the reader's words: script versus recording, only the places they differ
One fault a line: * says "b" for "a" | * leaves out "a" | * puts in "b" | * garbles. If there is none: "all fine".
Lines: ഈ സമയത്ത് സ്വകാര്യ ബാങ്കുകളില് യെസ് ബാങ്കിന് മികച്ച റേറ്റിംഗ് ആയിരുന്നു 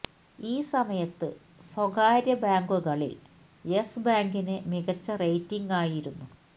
all fine